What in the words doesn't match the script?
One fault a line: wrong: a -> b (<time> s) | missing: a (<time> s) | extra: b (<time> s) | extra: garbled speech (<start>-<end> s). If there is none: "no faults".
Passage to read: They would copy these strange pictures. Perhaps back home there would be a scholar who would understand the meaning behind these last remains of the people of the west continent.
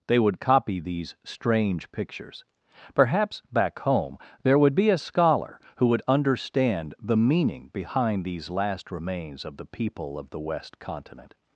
no faults